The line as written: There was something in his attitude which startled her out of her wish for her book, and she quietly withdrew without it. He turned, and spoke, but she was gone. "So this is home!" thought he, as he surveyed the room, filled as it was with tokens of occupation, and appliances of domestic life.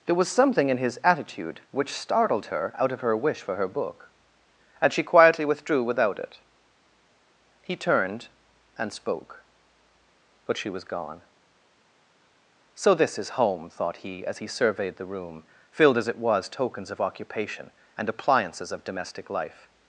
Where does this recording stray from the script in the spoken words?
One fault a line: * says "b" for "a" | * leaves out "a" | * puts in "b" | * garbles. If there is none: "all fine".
* leaves out "with"